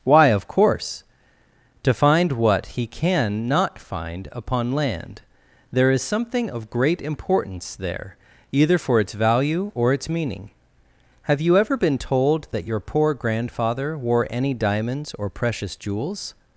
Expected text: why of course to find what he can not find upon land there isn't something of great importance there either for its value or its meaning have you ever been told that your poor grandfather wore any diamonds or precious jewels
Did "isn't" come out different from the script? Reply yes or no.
yes